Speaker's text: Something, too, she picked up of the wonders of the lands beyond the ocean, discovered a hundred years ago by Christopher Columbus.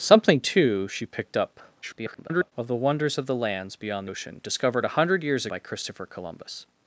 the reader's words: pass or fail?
fail